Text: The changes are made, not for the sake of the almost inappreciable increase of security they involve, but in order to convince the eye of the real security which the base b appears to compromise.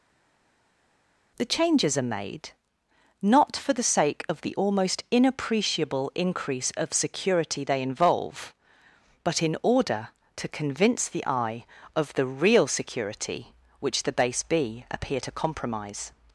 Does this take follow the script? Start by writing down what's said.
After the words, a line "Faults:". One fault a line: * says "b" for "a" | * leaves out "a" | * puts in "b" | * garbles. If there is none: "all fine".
The changes are made, not for the sake of the almost inappreciable increase of security they involve, but in order to convince the eye of the real security which the base b appear to compromise.
Faults:
* says "appear" for "appears"